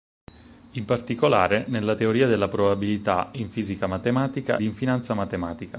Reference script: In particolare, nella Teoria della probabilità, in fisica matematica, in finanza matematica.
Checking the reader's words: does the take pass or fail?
pass